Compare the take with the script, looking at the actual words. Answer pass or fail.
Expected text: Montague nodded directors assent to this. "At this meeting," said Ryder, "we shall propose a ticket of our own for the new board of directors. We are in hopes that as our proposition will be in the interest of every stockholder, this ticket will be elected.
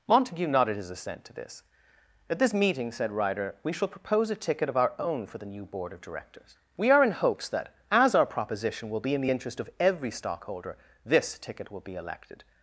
fail